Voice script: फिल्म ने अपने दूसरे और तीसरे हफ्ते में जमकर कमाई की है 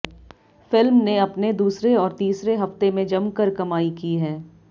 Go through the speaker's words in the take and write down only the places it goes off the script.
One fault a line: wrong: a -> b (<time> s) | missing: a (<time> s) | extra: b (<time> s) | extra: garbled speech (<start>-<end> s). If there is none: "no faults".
no faults